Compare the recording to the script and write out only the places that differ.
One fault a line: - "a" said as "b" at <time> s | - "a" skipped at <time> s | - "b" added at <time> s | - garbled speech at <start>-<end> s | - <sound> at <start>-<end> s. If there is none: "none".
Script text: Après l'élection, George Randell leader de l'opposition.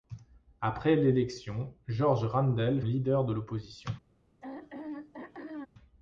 - throat clearing at 4.4-5.7 s